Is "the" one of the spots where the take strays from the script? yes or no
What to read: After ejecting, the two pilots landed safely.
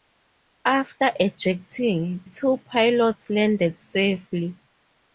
yes